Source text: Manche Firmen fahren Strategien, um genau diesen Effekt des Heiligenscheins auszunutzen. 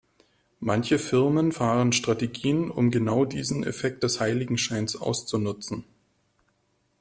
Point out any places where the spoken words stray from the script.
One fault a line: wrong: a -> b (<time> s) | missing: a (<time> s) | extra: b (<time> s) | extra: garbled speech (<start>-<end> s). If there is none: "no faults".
no faults